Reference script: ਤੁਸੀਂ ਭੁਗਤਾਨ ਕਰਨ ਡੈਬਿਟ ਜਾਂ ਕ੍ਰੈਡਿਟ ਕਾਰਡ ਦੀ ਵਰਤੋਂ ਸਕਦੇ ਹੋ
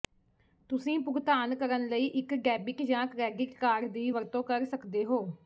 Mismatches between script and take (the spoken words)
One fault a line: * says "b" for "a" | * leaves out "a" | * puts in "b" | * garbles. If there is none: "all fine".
* puts in "ਲਈ ਇੱਕ"
* puts in "ਕਰ"